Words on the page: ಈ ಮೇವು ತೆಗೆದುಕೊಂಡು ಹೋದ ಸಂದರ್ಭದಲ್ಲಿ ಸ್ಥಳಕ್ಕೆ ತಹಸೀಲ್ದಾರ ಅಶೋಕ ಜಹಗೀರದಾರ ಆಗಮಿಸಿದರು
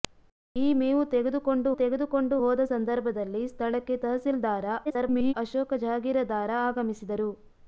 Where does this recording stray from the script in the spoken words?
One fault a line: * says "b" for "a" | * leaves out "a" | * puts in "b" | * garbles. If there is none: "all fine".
* puts in "ತೆಗೆದುಕೊಂಡು"
* garbles